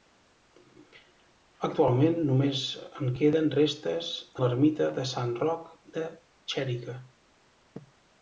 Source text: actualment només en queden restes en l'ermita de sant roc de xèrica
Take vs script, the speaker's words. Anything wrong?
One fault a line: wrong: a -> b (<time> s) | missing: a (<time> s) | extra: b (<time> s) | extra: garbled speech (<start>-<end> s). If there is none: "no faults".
missing: en (4.1 s)